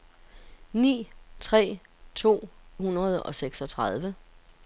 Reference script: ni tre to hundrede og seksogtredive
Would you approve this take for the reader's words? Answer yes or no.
yes